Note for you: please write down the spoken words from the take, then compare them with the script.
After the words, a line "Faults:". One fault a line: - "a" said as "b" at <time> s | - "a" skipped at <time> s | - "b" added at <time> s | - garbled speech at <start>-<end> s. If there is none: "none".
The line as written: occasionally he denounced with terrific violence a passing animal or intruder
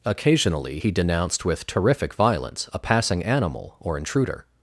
occasionally he denounced with terrific violence a passing animal or intruder
Faults:
none